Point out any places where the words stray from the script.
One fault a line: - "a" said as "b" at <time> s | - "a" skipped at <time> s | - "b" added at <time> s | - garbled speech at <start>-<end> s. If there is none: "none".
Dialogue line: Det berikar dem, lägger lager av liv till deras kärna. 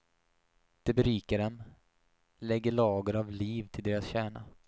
none